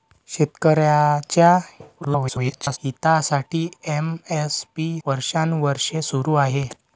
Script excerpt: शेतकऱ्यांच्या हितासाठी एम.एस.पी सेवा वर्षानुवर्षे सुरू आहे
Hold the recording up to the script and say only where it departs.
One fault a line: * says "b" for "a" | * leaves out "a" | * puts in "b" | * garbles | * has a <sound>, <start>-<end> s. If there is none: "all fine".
* garbles
* leaves out "सेवा"